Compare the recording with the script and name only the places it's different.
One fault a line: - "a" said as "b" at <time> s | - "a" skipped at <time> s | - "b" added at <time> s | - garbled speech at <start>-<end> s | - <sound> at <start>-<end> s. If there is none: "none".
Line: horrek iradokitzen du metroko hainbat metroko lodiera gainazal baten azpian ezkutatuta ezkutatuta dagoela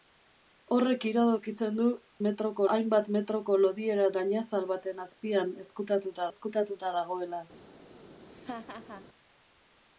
- laugh at 8.3-9.1 s